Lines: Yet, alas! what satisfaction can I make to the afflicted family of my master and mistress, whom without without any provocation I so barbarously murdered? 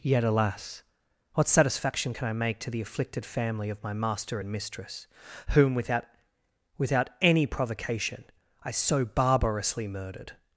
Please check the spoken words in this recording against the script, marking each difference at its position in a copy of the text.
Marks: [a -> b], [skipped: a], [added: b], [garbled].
Yet, alas! what satisfaction can I make to the afflicted family of my master and mistress, whom without without any provocation I so barbarously murdered?